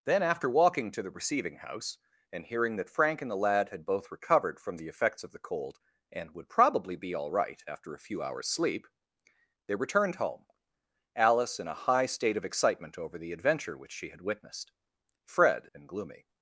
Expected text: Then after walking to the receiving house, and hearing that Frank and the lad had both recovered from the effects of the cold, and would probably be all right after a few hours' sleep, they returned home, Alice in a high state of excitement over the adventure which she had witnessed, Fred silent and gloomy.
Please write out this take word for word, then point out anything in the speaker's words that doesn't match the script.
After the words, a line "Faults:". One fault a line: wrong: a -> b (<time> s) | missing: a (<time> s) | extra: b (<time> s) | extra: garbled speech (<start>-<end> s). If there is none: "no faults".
Then after walking to the receiving house, and hearing that Frank and the lad had both recovered from the effects of the cold, and would probably be all right after a few hours' sleep, they returned home, Alice in a high state of excitement over the adventure which she had witnessed, Fred and gloomy.
Faults:
missing: silent (15.7 s)